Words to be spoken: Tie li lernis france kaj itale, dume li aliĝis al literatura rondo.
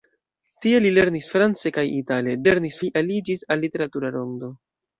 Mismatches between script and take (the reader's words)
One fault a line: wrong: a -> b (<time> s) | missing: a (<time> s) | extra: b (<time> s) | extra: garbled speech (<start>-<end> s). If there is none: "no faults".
wrong: dume -> lernis (2.4 s)